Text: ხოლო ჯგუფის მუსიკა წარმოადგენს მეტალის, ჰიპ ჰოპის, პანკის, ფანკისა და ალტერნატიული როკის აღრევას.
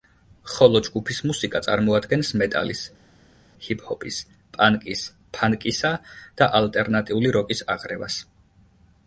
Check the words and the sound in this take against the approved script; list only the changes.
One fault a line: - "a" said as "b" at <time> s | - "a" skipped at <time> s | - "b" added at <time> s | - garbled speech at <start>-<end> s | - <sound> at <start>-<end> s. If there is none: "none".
none